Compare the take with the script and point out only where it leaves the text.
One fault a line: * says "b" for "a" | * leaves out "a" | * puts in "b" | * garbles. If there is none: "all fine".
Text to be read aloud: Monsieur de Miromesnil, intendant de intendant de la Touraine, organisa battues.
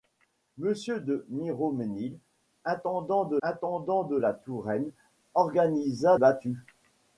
all fine